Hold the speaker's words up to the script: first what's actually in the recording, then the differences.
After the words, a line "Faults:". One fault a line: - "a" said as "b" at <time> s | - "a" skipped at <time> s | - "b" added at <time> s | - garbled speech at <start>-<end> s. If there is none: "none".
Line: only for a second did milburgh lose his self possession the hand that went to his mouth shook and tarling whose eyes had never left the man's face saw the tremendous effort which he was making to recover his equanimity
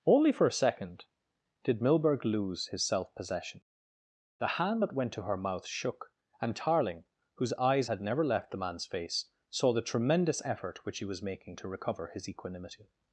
only for a second did milburgh lose his self possession the hand that went to her mouth shook and tarling whose eyes had never left the man's face saw the tremendous effort which he was making to recover his equanimity
Faults:
- "his" said as "her" at 5.2 s